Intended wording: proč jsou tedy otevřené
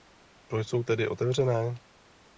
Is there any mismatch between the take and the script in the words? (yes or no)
no